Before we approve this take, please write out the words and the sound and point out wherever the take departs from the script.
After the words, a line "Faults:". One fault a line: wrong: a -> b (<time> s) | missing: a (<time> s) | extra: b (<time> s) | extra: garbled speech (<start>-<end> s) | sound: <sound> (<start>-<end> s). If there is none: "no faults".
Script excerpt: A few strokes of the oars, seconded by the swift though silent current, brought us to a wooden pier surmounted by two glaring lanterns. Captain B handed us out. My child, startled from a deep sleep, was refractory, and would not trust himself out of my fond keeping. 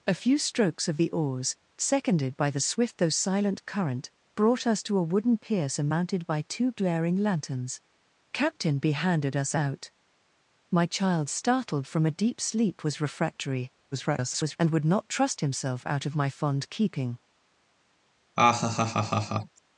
A few strokes of the oars, seconded by the swift though silent current, brought us to a wooden pier surmounted by two glaring lanterns. Captain B handed us out. My child, startled from a deep sleep, was refractory, [garbled] and would not trust himself out of my fond keeping.
Faults:
extra: garbled speech (13.9-14.6 s)
sound: laugh (18.4-19.6 s)